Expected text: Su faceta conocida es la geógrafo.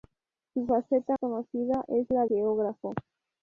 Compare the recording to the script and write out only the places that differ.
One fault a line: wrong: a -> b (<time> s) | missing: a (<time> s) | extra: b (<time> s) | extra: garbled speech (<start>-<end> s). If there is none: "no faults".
no faults